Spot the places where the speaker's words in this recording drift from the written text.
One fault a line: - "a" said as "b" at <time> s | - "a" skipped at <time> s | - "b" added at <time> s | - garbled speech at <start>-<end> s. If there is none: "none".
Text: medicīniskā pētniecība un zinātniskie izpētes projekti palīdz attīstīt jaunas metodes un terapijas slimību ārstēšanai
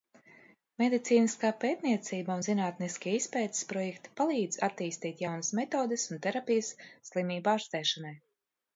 none